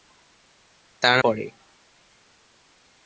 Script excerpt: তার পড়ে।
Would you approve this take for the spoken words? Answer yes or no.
yes